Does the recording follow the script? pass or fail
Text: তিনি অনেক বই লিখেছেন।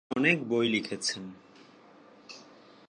pass